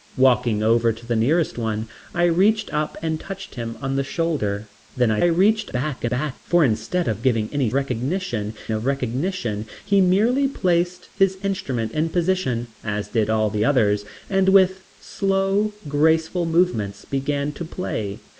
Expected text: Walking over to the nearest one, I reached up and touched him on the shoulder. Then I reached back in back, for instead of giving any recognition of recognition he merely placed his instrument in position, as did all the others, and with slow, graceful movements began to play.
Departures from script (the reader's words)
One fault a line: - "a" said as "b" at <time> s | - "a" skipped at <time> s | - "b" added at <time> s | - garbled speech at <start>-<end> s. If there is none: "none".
none